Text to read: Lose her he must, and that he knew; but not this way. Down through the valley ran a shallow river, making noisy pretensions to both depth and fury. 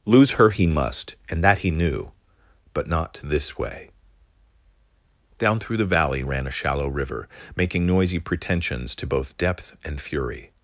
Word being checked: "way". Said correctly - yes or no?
yes